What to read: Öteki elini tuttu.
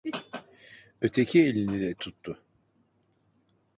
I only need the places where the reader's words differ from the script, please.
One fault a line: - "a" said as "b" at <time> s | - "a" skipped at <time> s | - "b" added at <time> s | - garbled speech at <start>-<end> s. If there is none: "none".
- "de" added at 1.8 s